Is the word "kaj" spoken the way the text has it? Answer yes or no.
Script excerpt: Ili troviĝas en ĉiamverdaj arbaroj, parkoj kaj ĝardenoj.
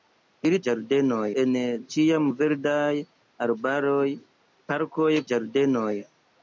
no